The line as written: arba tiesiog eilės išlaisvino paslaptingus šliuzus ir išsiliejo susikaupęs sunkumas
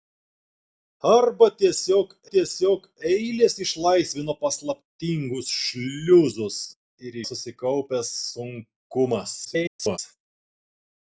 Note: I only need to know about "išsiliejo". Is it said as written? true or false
false